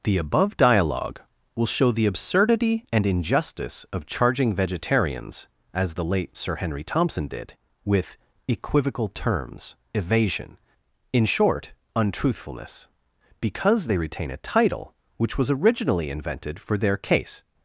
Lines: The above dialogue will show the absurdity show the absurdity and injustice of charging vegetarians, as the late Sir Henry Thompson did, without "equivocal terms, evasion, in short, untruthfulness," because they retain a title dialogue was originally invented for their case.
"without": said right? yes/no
no